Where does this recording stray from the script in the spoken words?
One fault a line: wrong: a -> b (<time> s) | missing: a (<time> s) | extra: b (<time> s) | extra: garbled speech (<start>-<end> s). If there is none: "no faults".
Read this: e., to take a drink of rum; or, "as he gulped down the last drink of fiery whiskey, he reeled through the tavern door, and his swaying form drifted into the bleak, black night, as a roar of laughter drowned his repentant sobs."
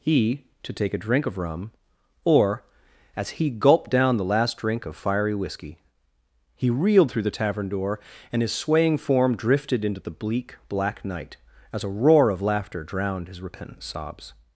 wrong: e -> he (0.0 s)